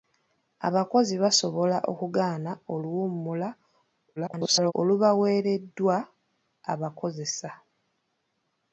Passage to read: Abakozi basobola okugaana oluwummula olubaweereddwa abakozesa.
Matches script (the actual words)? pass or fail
fail